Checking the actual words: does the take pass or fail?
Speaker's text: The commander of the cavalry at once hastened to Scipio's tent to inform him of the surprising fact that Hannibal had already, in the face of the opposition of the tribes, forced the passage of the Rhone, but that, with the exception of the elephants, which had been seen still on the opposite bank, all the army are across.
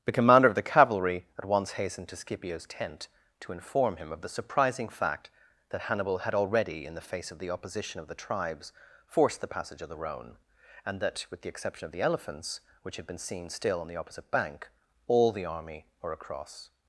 fail